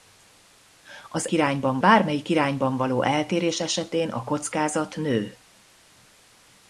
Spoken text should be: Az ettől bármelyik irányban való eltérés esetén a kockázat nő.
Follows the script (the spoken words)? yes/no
no